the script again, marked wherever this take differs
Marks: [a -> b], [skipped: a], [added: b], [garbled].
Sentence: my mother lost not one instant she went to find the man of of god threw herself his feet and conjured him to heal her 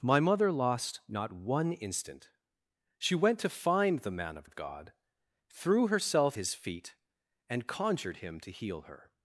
my mother lost not one instant she went to find the man of of god threw herself his feet and conjured him to heal her